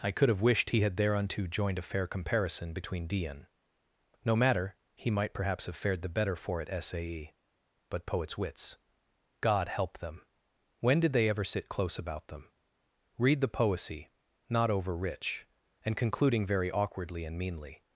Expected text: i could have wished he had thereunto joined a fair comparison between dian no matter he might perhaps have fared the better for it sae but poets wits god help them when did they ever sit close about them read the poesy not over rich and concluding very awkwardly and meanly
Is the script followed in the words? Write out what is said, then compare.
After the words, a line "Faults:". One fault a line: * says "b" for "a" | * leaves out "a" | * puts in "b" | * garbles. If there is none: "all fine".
i could have wished he had thereunto joined a fair comparison between dian no matter he might perhaps have fared the better for it sae but poets wits god help them when did they ever sit close about them read the poesy not over rich and concluding very awkwardly and meanly
Faults:
all fine